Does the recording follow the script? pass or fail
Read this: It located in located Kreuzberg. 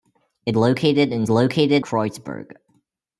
pass